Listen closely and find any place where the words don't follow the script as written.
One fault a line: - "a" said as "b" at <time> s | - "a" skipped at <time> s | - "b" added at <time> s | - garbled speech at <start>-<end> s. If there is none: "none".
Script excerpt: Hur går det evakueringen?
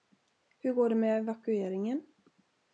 - "med" added at 0.9 s